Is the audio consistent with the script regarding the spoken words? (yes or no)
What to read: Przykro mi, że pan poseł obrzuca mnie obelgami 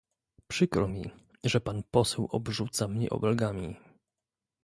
yes